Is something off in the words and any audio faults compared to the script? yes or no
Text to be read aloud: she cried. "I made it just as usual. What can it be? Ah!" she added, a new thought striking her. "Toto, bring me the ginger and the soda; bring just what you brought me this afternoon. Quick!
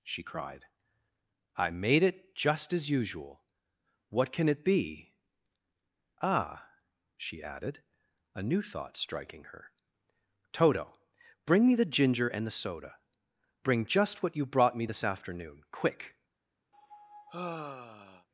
yes